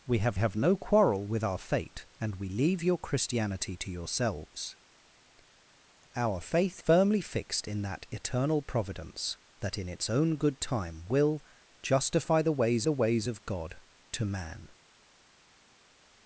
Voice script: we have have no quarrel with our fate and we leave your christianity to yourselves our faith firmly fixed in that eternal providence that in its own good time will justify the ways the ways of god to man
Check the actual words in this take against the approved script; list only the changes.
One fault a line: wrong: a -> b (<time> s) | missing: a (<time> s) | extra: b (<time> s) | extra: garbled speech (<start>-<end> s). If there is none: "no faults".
no faults